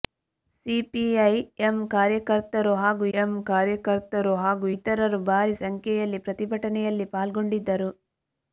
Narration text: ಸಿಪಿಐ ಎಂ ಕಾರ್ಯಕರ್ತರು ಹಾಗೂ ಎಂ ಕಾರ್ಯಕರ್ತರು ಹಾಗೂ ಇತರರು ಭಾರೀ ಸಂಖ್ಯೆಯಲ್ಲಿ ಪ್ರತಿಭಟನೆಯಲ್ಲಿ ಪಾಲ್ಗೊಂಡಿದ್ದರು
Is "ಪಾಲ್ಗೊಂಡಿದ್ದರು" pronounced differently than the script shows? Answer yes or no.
no